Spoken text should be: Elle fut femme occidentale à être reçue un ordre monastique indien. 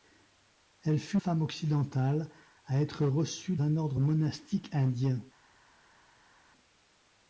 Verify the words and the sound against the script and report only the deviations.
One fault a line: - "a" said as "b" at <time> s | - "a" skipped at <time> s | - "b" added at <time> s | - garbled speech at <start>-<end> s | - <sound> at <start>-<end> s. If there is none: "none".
none